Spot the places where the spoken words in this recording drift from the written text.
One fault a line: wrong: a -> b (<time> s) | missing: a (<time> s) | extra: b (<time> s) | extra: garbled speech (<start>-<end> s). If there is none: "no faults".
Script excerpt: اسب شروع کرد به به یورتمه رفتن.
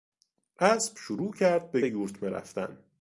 no faults